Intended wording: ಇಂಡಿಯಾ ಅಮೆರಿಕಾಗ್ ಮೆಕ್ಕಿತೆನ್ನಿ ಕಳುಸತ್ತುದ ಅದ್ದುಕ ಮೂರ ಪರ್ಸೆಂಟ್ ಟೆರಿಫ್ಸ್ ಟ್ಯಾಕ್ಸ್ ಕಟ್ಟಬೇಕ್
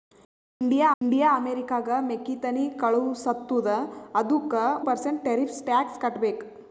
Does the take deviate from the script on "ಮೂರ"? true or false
true